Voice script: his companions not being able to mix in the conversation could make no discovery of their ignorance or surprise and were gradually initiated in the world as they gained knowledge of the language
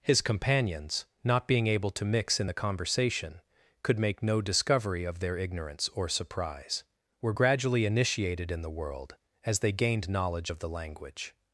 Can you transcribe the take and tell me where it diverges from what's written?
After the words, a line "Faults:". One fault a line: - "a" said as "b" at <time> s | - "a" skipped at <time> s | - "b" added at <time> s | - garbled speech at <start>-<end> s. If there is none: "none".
his companions not being able to mix in the conversation could make no discovery of their ignorance or surprise were gradually initiated in the world as they gained knowledge of the language
Faults:
- "and" skipped at 6.8 s